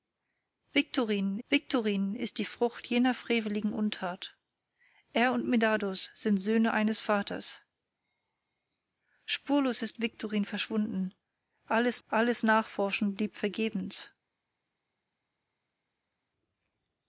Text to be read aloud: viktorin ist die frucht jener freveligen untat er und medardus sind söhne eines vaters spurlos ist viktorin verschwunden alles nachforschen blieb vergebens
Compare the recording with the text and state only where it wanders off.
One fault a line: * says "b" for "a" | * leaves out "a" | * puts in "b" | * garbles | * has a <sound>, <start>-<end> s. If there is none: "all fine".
* puts in "viktorin"
* puts in "alles"